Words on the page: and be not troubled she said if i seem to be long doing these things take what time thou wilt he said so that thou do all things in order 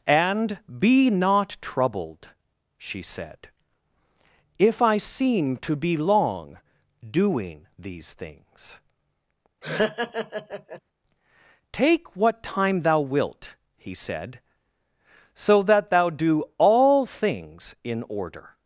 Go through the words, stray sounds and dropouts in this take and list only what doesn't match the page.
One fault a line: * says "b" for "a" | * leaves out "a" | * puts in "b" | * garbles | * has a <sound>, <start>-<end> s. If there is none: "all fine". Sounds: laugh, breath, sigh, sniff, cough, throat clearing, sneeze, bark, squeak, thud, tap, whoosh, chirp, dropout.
* has a laugh, 9.6-10.8 s